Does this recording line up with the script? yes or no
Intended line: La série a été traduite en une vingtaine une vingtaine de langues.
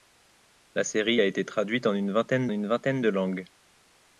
yes